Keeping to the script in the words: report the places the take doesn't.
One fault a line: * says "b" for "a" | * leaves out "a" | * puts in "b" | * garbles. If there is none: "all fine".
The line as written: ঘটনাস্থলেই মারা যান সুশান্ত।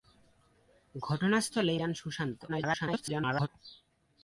* leaves out "মারা"
* garbles